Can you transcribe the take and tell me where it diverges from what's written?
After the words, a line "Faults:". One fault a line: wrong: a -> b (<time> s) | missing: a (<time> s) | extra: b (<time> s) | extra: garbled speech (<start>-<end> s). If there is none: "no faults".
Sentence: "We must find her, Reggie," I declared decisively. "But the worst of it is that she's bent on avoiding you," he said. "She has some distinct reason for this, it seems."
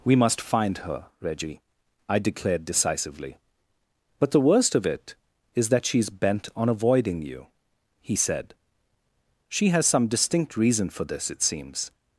"We must find her, Reggie," I declared decisively. "But the worst of it is that she's bent on avoiding you," he said. "She has some distinct reason for this, it seems."
Faults:
no faults